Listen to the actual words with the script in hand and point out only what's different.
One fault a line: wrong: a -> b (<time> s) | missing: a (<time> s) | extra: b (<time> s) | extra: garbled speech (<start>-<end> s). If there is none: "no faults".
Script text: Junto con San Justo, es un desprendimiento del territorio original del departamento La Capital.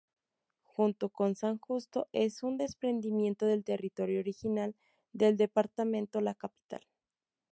no faults